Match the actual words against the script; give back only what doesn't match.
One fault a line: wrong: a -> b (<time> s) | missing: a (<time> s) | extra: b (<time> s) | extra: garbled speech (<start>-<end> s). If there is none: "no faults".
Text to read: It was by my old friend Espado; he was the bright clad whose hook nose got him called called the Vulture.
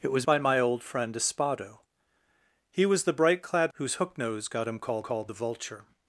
no faults